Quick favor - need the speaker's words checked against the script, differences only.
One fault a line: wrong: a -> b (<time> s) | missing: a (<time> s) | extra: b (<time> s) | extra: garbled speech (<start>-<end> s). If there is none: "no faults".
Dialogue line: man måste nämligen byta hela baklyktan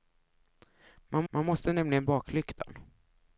extra: man (1.3 s)
missing: byta hela (2.1 s)